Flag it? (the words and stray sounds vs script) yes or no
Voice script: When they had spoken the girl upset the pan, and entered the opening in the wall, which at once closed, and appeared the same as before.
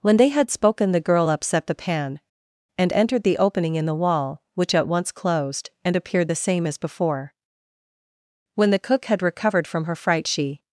yes